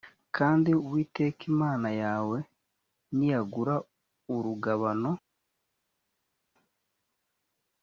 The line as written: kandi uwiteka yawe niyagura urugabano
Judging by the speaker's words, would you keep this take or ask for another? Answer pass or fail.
fail